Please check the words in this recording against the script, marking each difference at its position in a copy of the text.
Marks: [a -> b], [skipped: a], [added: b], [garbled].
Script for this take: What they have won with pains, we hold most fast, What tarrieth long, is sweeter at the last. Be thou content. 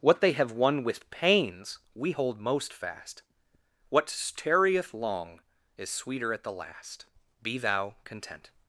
What they have won with pains, we hold most fast, What tarrieth long, is sweeter at the last. Be thou content.